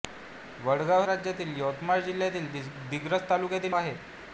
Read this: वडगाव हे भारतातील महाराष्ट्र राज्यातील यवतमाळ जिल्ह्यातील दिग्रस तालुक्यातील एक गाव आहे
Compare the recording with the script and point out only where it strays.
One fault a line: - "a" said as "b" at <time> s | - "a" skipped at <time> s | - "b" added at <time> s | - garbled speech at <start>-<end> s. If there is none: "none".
- "हे भारतातील महाराष्ट्र" skipped at 1.0 s
- "एक गाव" skipped at 3.7 s